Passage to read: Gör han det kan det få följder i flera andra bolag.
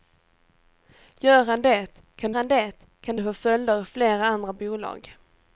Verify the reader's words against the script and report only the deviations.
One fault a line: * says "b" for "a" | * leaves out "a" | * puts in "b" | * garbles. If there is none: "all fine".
* puts in "han det kan"